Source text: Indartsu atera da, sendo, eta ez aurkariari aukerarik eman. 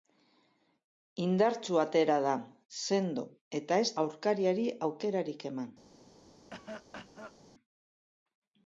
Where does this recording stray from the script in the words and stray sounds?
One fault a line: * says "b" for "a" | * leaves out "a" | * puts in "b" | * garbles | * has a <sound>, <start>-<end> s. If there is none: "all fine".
* has a cough, 6.5-7.4 s